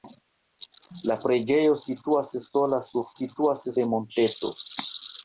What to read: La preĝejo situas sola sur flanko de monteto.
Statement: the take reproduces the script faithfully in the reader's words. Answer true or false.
false